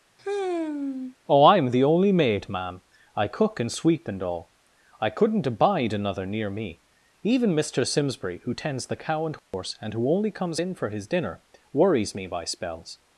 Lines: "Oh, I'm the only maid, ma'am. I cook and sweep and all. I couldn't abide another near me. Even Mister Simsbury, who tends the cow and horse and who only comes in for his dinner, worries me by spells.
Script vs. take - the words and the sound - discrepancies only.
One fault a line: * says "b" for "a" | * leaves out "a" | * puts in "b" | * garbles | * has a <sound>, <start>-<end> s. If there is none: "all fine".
* has a sigh, 0.2-1.2 s
* has a dropout, 9.4-9.5 s